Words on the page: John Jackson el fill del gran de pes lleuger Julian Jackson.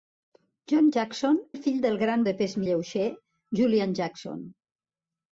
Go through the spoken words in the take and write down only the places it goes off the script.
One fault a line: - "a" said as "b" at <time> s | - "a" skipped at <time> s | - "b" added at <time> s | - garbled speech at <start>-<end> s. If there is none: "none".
none